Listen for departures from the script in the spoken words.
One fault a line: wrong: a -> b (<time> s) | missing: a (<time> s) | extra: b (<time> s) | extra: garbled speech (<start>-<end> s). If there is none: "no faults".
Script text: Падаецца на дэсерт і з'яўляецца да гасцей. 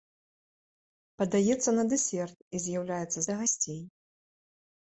no faults